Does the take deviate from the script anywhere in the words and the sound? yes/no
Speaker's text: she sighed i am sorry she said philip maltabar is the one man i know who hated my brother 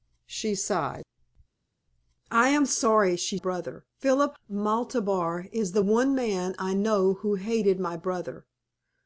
yes